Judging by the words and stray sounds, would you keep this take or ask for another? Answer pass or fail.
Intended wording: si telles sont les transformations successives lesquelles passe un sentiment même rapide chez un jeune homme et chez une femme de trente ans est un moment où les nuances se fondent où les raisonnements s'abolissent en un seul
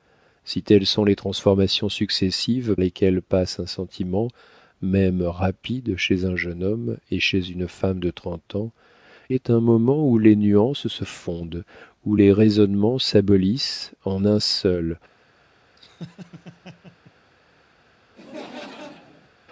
fail